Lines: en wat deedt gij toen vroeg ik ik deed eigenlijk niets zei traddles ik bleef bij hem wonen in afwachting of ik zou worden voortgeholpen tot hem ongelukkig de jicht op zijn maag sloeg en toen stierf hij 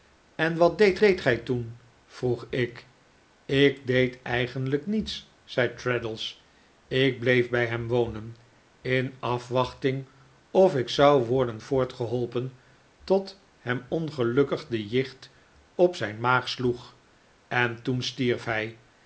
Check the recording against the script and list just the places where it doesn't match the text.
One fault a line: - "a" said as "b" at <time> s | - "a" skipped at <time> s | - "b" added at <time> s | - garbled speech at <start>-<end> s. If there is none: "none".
- "deedt" added at 1.0 s